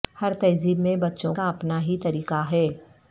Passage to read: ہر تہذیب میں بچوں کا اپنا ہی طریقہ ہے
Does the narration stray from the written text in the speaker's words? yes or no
no